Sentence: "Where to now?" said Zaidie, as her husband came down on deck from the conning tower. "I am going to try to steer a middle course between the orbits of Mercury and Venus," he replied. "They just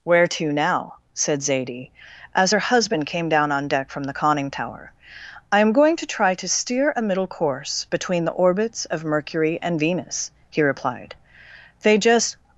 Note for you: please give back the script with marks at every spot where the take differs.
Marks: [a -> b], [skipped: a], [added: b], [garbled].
"Where to now?" said Zaidie, as her husband came down on deck from the conning tower. "I am going to try to steer a middle course between the orbits of Mercury and Venus," he replied. "They just